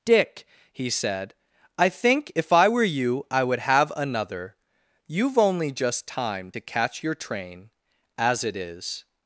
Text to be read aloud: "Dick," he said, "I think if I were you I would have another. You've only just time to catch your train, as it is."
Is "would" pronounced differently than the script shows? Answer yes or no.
no